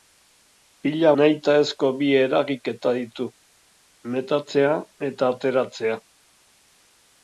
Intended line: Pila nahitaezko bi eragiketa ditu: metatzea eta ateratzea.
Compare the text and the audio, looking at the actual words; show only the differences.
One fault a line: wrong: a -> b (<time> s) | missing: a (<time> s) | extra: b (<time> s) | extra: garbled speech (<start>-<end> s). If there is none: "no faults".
no faults